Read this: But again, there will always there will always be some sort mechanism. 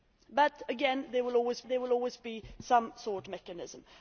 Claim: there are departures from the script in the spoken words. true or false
false